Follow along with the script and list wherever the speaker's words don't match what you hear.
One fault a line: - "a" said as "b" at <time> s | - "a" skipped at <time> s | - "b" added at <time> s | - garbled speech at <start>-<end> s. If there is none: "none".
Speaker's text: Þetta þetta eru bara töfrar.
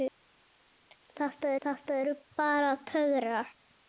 none